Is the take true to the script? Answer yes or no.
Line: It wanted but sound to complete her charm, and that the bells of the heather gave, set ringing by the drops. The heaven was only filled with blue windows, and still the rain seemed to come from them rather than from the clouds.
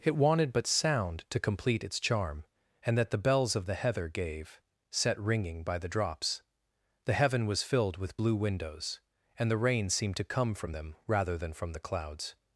no